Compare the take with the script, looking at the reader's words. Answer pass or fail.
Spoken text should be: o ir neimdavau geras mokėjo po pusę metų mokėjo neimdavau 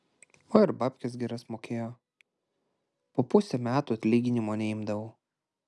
fail